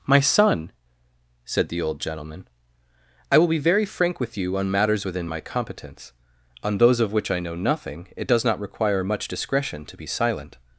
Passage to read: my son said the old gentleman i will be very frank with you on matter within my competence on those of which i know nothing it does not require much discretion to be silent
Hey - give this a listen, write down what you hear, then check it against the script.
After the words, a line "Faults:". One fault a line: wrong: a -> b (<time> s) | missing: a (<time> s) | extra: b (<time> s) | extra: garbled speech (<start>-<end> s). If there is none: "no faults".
my son said the old gentleman i will be very frank with you on matters within my competence on those of which i know nothing it does not require much discretion to be silent
Faults:
wrong: matter -> matters (4.7 s)